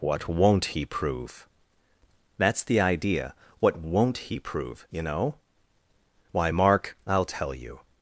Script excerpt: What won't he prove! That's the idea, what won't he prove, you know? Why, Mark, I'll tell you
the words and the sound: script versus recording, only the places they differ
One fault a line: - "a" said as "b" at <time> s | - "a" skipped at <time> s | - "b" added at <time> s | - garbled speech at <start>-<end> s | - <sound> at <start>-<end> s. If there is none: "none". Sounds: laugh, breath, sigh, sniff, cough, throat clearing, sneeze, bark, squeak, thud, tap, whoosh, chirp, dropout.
none